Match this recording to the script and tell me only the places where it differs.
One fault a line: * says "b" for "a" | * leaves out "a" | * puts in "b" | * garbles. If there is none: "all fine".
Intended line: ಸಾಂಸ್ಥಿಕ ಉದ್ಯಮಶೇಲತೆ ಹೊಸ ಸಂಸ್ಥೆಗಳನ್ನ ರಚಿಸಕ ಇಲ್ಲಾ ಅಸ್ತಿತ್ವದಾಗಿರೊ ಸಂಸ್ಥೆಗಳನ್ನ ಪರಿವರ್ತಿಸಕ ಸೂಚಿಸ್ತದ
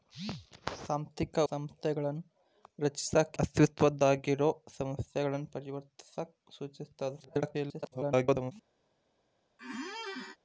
* leaves out "ಉದ್ಯಮಶೇಲತೆ ಹೊಸ"
* leaves out "ಇಲ್ಲಾ"
* garbles